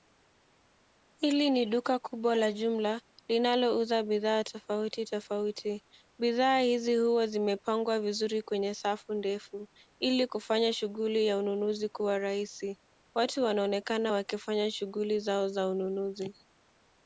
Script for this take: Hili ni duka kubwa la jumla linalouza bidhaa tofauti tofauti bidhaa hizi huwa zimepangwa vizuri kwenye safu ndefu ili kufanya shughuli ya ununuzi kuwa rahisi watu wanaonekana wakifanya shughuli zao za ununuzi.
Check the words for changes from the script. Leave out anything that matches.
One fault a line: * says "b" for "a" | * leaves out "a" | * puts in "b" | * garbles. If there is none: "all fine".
all fine